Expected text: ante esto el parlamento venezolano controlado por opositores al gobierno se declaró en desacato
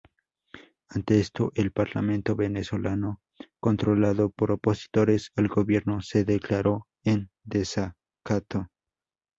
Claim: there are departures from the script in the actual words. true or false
false